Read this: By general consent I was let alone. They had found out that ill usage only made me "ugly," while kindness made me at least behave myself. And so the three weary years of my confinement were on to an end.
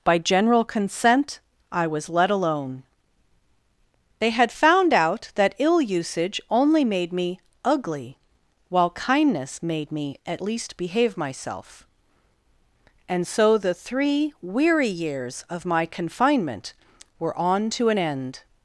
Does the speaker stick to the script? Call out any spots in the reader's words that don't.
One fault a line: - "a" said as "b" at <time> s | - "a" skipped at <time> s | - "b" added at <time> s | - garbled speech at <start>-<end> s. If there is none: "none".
none